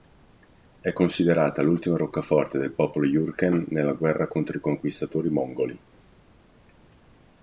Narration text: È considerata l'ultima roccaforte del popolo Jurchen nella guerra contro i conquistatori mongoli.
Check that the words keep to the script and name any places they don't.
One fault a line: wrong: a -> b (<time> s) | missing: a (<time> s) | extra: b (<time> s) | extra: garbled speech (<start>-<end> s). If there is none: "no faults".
no faults